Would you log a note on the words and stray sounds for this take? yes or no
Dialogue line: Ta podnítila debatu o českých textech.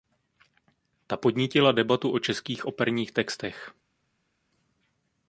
yes